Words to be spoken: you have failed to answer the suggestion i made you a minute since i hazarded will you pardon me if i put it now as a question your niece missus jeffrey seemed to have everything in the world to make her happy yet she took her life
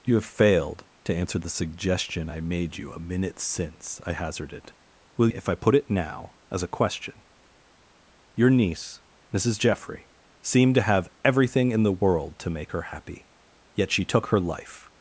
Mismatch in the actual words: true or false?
true